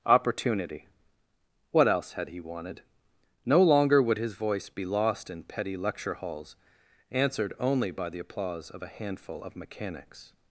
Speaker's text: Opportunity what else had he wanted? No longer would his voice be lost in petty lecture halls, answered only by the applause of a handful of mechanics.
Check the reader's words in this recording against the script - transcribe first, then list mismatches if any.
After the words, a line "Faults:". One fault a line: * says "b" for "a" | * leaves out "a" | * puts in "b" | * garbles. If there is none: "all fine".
Opportunity what else had he wanted? No longer would his voice be lost in petty lecture halls, answered only by the applause of a handful of mechanics.
Faults:
all fine